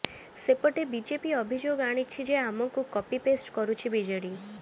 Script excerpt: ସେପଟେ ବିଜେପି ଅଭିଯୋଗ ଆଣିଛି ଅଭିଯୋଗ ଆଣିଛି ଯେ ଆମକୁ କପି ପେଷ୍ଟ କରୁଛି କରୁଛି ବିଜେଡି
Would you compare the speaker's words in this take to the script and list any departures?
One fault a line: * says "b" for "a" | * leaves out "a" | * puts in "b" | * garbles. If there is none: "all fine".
* leaves out "ଅଭିଯୋଗ ଆଣିଛି"
* leaves out "କରୁଛି"